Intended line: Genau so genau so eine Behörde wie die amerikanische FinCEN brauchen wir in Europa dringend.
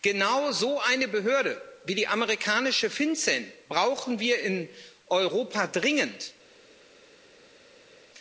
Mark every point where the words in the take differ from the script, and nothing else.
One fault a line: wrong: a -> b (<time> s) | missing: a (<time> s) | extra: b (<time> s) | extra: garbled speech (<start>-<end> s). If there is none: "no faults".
missing: genau so (0.8 s)